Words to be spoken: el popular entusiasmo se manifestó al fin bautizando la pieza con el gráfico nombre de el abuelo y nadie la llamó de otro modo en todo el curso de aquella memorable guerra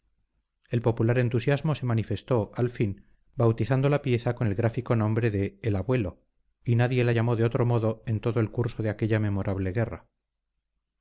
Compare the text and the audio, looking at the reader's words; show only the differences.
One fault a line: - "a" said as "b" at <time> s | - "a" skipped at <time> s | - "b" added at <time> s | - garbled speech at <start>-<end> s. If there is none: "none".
none